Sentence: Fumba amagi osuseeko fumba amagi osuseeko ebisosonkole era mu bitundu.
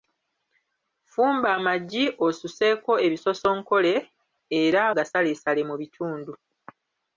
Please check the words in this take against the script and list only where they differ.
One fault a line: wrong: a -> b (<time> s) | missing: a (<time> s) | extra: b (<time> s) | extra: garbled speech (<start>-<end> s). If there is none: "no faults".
missing: fumba amagi osuseeko (2.9 s)
extra: gasaleesale (5.0 s)